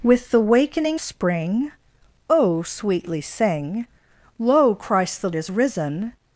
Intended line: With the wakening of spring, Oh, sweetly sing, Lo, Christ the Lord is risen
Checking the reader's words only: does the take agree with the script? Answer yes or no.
no